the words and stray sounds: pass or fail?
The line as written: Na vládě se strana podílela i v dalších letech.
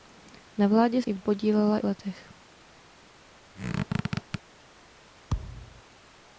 fail